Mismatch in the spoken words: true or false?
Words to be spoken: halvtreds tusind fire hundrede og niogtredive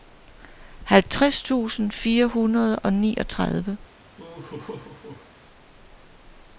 false